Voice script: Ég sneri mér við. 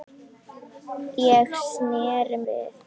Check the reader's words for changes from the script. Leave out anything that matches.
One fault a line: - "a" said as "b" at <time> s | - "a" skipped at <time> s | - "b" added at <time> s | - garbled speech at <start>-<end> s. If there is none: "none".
- "mér" skipped at 2.4 s